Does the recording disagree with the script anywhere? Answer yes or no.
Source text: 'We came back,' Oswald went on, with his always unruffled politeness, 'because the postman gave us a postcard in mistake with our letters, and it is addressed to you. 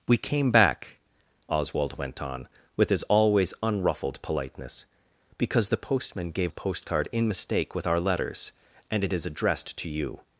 yes